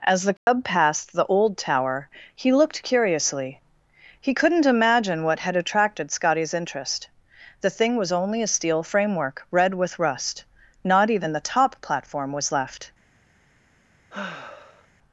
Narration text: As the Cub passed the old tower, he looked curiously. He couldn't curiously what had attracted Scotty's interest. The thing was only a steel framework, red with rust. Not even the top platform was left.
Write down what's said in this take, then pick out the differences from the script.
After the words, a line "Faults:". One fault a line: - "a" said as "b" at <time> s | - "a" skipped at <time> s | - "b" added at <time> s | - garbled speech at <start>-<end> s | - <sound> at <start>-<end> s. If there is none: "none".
As the Cub passed the old tower, he looked curiously. He couldn't imagine what had attracted Scotty's interest. The thing was only a steel framework, red with rust. Not even the top platform was left.
Faults:
- dropout at 0.4-0.5 s
- "curiously" said as "imagine" at 4.7 s
- sigh at 14.1-14.9 s